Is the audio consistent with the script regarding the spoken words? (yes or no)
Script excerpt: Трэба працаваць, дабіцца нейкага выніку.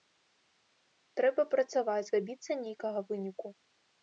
yes